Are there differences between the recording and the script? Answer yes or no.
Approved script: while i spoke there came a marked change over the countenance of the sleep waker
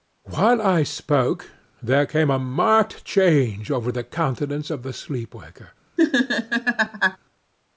no